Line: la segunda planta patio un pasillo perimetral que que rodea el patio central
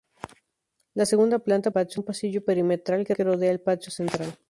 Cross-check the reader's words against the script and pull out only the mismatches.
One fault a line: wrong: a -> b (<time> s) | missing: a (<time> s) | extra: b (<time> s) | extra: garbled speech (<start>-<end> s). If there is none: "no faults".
no faults